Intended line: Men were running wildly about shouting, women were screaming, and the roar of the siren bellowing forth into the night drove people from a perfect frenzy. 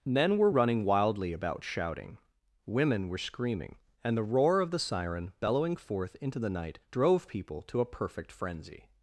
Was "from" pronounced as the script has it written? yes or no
no